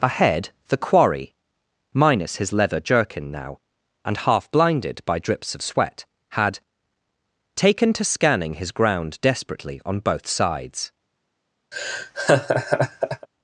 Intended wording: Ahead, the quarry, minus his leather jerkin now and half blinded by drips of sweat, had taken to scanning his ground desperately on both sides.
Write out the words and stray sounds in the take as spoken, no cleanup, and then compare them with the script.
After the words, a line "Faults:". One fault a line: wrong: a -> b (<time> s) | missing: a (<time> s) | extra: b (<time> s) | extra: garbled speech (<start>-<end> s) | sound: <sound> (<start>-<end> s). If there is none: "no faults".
Ahead, the quarry, minus his leather jerkin now and half blinded by drips of sweat, had taken to scanning his ground desperately on both sides.
Faults:
sound: laugh (11.7-13.3 s)